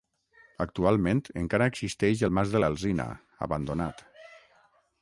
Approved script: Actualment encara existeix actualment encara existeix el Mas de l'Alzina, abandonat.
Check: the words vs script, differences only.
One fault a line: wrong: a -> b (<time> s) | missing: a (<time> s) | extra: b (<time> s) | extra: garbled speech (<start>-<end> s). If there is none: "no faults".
missing: actualment encara existeix (2.2 s)